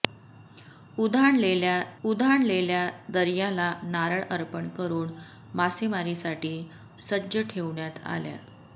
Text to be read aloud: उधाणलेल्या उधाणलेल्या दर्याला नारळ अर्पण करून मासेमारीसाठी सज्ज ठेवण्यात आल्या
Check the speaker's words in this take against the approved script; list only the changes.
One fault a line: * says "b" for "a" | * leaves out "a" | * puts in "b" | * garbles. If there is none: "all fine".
all fine